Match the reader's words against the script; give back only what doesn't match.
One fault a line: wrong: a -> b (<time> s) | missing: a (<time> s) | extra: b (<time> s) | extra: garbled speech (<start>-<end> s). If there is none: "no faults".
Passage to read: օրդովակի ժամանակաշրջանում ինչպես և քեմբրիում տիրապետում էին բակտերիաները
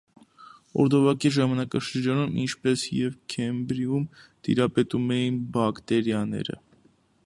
no faults